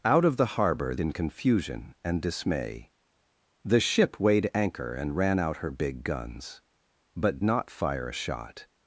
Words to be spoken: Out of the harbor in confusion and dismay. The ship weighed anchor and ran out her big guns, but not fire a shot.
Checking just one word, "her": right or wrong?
right